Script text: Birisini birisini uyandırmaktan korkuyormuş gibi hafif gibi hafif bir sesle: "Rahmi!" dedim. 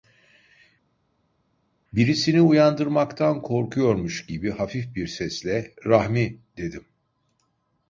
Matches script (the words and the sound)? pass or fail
fail